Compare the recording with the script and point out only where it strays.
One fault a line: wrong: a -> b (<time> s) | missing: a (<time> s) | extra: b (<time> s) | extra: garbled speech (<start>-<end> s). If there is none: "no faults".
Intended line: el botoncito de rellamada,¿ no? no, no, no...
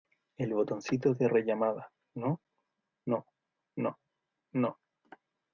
no faults